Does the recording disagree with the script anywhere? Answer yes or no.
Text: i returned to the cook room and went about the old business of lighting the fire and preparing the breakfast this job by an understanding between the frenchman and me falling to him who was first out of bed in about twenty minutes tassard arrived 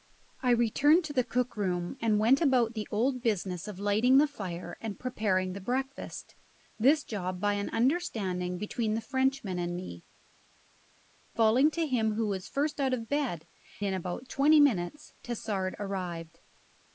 no